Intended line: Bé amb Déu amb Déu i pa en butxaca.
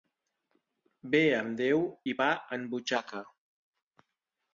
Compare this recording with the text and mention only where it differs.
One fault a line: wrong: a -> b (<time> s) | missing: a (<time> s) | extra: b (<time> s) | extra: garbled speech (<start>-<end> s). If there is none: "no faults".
missing: amb Déu (1.8 s)